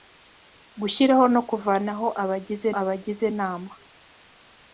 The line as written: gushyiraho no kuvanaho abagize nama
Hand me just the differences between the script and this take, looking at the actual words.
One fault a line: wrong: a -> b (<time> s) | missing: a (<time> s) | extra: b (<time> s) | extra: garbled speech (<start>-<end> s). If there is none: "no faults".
extra: abagize (2.8 s)